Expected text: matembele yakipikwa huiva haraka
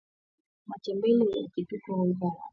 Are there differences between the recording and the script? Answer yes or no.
no